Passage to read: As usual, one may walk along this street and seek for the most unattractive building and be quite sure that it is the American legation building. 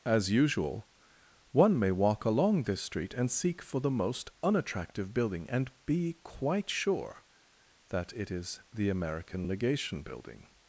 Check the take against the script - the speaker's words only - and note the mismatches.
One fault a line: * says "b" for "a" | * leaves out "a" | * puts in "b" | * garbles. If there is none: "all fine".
all fine